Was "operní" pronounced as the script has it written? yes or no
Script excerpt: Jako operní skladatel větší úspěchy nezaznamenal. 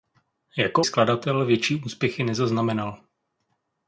no